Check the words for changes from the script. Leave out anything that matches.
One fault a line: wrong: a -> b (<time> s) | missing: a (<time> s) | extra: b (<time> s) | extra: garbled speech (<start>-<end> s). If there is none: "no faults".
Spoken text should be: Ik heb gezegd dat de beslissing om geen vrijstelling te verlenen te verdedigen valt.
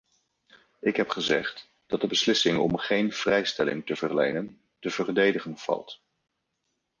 no faults